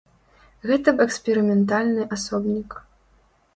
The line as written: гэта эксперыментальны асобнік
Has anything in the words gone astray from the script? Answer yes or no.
no